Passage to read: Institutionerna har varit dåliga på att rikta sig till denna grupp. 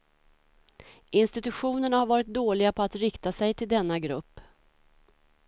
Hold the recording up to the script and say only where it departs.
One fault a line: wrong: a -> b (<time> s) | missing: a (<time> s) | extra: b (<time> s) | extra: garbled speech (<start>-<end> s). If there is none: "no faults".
no faults